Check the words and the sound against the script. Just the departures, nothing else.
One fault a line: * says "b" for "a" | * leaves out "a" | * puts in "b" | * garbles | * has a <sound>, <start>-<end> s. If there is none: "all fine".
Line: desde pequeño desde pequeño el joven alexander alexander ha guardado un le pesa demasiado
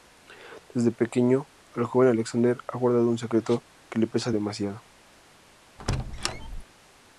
* leaves out "desde pequeño"
* leaves out "alexander"
* puts in "secreto que"
* has a squeak, 5.8-6.6 s